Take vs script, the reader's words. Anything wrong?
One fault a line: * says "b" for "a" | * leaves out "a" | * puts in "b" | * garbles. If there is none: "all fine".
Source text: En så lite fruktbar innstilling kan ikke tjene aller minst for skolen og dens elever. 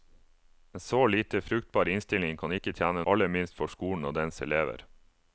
all fine